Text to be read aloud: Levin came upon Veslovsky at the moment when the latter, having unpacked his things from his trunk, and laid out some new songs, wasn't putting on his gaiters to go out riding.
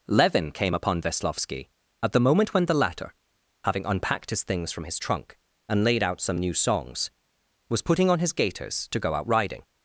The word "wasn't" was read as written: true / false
false